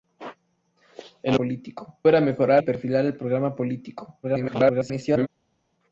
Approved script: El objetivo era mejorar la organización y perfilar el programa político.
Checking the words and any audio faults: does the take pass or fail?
fail